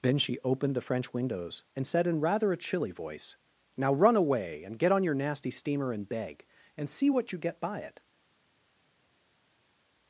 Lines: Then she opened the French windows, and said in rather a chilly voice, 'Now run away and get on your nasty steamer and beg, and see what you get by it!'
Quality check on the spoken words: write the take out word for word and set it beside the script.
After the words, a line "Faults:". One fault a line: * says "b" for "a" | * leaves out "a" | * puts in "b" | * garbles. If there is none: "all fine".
Then she opened the French windows, and said in rather a chilly voice, 'Now run away and get on your nasty steamer and beg, and see what you get by it!'
Faults:
all fine